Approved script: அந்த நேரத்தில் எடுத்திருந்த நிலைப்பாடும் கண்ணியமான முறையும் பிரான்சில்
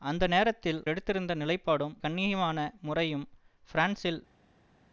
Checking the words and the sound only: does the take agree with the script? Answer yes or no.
yes